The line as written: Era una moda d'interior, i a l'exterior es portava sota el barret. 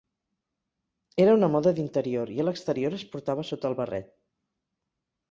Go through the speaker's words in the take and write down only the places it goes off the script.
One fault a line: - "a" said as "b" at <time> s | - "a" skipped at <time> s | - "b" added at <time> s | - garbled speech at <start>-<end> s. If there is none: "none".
none